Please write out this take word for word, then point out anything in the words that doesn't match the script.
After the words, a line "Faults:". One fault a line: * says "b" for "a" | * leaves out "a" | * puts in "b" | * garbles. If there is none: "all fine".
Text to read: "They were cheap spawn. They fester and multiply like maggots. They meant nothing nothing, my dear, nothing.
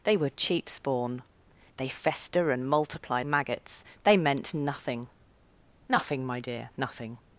"They were cheap spawn. They fester and multiply maggots. They meant nothing nothing, my dear, nothing.
Faults:
* leaves out "like"